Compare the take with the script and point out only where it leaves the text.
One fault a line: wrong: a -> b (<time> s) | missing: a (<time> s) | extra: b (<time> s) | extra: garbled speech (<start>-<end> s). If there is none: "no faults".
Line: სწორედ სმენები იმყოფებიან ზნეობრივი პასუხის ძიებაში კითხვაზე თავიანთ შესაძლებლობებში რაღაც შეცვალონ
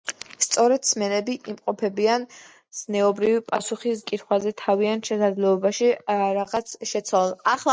missing: ძიებაში (4.0 s)